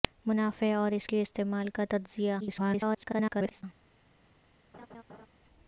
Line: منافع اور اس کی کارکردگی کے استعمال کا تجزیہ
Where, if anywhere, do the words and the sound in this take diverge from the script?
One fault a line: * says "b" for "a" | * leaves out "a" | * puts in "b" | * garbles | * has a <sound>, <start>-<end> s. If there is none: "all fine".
* leaves out "کی کارکردگی"
* garbles
* has a laugh, 4.7-5.3 s